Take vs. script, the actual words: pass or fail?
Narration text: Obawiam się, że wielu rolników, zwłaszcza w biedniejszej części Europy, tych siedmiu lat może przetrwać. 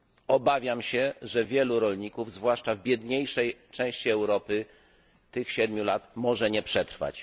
fail